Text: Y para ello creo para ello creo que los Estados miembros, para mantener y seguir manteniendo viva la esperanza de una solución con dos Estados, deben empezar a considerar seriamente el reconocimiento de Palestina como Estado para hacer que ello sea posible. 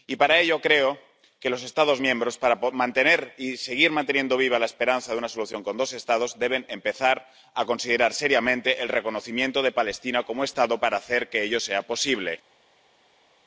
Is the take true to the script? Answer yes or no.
no